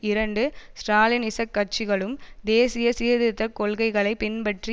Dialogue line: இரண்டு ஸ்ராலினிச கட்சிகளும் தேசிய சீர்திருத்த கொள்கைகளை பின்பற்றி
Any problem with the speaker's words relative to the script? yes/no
no